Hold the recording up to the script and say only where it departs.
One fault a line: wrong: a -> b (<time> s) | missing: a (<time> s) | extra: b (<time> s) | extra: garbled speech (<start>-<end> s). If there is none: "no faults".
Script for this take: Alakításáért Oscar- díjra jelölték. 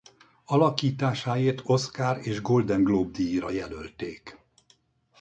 extra: és Golden Globe (2.2 s)